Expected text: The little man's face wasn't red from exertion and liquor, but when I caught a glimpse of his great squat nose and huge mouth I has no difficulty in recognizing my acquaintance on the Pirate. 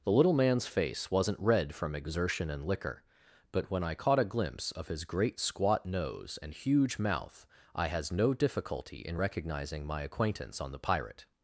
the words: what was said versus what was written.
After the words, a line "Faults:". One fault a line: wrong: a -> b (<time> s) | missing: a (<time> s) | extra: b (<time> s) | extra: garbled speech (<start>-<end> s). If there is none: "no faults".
The little man's face wasn't red from exertion and liquor, but when I caught a glimpse of his great squat nose and huge mouth I has no difficulty in recognizing my acquaintance on the Pirate.
Faults:
no faults